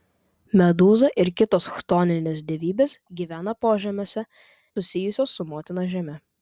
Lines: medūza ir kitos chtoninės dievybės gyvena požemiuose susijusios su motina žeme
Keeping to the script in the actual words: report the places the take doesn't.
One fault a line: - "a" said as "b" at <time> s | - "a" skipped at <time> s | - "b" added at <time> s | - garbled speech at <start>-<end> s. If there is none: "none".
none